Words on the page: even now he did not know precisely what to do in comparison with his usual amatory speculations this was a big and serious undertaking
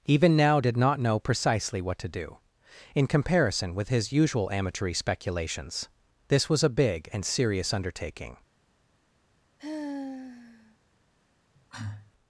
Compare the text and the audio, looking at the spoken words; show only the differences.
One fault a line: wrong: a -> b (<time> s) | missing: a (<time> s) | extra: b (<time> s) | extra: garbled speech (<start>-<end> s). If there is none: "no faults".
missing: he (0.6 s)